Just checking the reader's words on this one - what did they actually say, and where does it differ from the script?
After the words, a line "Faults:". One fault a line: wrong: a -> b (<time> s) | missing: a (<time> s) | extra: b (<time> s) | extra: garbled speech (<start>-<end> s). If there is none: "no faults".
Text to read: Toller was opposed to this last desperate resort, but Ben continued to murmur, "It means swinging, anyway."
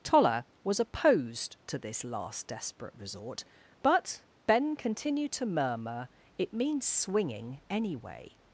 Toller was opposed to this last desperate resort, but Ben continued to murmur, "It means swinging, anyway."
Faults:
no faults